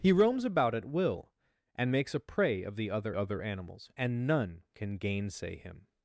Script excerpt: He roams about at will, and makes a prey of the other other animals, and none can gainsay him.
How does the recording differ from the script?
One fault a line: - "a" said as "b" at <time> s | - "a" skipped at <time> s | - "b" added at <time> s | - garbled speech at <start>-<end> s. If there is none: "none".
none